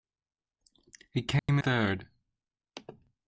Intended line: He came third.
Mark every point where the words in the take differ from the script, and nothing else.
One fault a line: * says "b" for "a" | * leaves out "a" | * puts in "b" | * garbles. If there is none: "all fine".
all fine